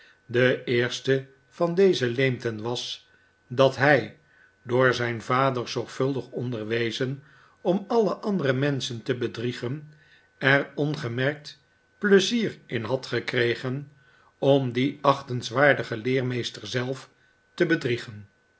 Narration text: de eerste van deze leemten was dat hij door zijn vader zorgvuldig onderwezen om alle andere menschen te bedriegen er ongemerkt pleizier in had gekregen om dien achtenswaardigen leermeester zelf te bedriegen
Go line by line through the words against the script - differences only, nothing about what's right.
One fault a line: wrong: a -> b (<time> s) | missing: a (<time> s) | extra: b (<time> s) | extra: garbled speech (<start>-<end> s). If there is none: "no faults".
no faults